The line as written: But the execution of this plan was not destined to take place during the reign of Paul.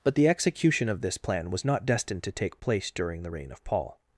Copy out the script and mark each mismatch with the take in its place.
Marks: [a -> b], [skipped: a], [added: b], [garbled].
But the execution of this plan was not destined to take place during the reign of Paul.